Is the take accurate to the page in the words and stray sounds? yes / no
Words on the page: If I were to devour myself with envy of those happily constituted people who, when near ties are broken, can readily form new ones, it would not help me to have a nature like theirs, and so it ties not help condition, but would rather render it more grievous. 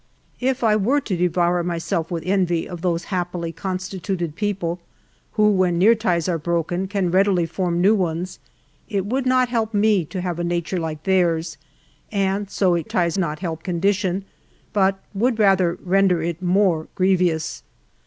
yes